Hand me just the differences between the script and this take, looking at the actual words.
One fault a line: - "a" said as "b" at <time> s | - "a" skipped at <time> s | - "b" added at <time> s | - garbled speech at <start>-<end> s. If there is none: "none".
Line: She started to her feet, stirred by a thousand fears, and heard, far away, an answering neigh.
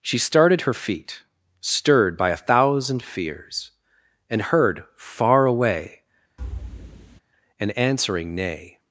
- "to" skipped at 0.6 s